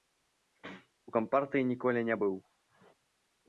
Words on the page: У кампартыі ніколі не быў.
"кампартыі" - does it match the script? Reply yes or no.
yes